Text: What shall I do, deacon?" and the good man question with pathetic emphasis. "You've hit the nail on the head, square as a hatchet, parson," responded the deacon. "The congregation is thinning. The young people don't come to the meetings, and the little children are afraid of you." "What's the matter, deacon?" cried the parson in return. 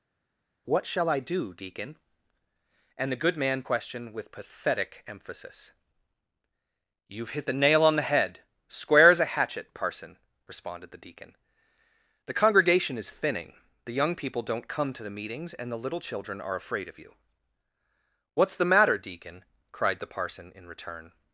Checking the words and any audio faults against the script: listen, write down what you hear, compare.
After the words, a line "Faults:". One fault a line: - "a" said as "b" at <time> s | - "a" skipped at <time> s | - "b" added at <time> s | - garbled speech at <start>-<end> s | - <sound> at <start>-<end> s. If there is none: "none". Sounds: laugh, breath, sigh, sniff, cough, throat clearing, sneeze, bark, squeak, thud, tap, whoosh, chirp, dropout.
What shall I do, deacon?" and the good man question with pathetic emphasis. "You've hit the nail on the head, square as a hatchet, parson," responded the deacon. "The congregation is thinning. The young people don't come to the meetings, and the little children are afraid of you." "What's the matter, deacon?" cried the parson in return.
Faults:
none